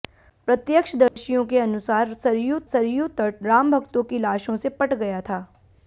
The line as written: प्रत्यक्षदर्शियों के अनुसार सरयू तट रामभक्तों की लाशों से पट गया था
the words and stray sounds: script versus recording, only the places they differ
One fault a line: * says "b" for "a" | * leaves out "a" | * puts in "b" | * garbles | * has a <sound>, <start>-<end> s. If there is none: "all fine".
* has a dropout, 1.1-1.2 s
* puts in "सरयू"